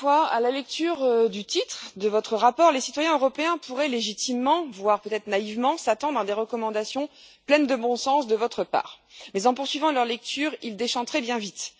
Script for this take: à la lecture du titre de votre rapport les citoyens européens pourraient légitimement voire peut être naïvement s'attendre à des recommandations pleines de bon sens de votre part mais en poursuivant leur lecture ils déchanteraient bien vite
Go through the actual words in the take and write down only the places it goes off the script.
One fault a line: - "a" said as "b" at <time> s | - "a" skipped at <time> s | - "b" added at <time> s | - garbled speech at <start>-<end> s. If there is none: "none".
none